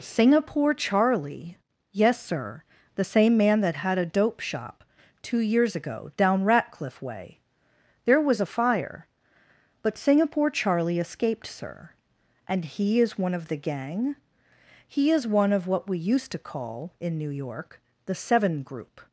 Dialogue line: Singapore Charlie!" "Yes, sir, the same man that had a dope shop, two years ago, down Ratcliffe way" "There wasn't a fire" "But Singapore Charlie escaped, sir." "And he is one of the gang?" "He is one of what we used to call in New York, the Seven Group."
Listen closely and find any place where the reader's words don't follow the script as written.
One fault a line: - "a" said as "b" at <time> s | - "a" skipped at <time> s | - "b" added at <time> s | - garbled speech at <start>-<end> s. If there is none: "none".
- "wasn't" said as "was" at 8.2 s